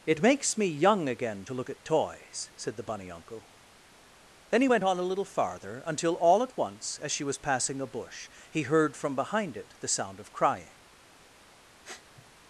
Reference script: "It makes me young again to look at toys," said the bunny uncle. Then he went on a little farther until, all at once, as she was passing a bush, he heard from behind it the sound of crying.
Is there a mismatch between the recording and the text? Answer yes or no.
no